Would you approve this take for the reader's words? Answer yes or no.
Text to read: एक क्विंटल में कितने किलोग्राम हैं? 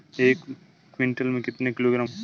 yes